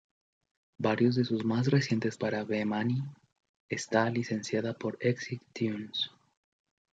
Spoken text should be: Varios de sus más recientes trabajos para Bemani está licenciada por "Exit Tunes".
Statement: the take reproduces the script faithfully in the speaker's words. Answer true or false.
false